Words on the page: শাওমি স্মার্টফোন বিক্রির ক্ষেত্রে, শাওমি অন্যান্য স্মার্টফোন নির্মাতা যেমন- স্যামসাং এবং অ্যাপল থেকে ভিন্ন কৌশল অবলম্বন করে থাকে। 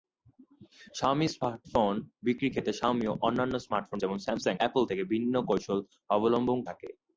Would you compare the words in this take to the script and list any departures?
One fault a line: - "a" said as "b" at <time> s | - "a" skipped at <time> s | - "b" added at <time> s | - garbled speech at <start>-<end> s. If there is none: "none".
- "নির্মাতা" skipped at 4.0 s
- "এবং" skipped at 4.6 s
- "করে" skipped at 6.6 s